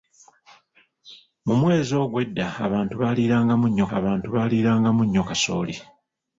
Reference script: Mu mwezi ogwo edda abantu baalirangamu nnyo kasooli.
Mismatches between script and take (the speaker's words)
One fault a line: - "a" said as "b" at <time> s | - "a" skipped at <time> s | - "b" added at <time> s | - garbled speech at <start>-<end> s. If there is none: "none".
- "abantu baalirangamu nnyo" added at 4.0 s